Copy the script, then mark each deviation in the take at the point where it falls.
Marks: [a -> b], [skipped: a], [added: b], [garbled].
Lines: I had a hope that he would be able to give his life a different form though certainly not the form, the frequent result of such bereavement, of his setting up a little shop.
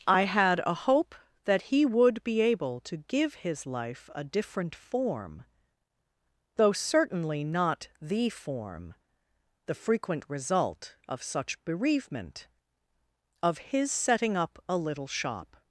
I had a hope that he would be able to give his life a different form though certainly not the form, the frequent result of such bereavement, of his setting up a little shop.